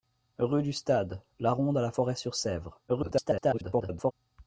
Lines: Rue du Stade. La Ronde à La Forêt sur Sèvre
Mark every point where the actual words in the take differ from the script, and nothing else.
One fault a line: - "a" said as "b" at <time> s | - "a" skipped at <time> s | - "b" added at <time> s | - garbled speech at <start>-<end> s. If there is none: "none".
- garbled speech at 2.9-4.1 s